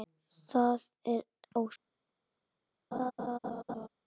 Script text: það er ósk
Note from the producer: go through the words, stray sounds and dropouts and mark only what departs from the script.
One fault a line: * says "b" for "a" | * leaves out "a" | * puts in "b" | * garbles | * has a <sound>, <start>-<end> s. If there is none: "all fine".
* has a laugh, 2.9-3.9 s